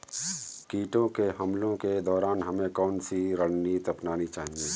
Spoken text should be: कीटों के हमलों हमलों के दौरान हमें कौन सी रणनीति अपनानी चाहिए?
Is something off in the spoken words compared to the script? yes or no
yes